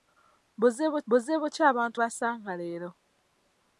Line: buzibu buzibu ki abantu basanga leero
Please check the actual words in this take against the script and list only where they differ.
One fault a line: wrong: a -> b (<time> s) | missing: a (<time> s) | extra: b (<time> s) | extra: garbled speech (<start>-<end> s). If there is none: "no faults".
no faults